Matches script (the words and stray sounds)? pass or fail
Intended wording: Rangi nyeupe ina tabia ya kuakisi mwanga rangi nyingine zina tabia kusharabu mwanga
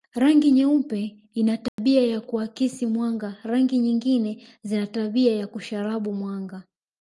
fail